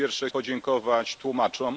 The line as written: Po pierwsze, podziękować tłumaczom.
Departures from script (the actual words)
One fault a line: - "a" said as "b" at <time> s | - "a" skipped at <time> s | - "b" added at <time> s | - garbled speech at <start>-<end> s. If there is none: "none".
none